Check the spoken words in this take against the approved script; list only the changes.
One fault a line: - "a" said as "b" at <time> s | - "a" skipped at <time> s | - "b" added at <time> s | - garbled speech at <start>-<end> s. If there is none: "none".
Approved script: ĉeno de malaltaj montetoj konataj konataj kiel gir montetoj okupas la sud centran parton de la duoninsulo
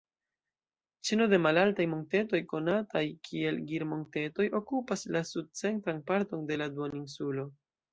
- "konataj" skipped at 3.0 s